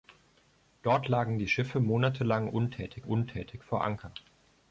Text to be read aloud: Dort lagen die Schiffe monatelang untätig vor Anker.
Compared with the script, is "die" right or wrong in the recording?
right